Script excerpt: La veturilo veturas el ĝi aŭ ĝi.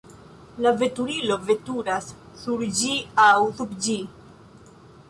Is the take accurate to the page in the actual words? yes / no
no